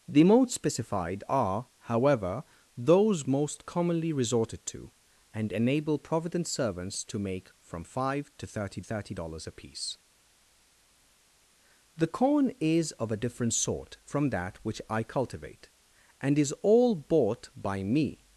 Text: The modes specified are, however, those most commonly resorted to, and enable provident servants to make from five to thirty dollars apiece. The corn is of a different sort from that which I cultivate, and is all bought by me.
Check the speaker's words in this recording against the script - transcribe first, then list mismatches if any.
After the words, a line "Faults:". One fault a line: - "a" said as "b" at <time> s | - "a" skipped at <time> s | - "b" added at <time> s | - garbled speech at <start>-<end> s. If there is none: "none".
The modes specified are, however, those most commonly resorted to, and enable provident servants to make from five to thirty thirty dollars apiece. The corn is of a different sort from that which I cultivate, and is all bought by me.
Faults:
- "thirty" added at 8.8 s